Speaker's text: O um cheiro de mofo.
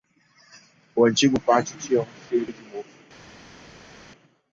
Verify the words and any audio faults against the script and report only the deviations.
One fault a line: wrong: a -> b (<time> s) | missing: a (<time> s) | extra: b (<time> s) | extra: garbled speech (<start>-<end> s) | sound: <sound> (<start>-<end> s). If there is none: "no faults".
extra: antigo pátio tinha (1.1 s)